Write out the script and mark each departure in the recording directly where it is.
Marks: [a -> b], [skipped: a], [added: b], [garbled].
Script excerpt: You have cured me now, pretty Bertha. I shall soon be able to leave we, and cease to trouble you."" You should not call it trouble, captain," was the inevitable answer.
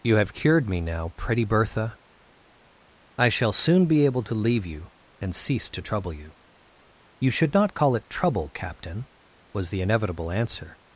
You have cured me now, pretty Bertha. I shall soon be able to leave [we, -> you] and cease to trouble you."" You should not call it trouble, captain," was the inevitable answer.